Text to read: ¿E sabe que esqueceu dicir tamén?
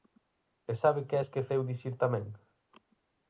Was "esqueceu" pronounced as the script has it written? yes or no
yes